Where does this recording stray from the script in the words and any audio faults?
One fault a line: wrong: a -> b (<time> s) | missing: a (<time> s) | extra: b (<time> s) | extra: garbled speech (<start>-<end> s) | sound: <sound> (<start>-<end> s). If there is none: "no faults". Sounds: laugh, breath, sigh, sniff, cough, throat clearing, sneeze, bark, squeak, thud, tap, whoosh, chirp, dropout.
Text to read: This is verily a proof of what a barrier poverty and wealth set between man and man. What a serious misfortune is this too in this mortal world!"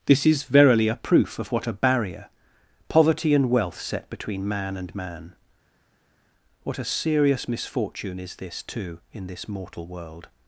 no faults